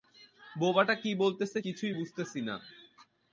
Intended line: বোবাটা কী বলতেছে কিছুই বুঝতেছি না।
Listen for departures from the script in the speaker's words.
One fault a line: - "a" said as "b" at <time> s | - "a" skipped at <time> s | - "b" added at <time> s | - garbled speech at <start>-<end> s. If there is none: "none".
none